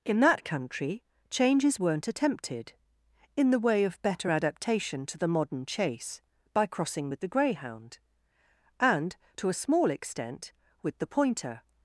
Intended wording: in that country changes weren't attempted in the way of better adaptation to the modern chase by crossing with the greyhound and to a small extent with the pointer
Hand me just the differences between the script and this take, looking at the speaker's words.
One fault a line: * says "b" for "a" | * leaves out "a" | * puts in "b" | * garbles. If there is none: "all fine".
all fine